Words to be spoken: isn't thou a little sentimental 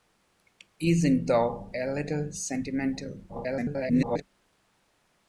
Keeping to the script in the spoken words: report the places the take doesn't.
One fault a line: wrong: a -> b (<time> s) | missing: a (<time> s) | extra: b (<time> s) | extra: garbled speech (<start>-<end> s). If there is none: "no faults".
extra: garbled speech (3.3-4.2 s)